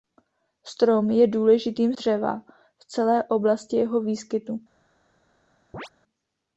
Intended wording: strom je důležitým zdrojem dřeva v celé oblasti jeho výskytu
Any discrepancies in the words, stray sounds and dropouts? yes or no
yes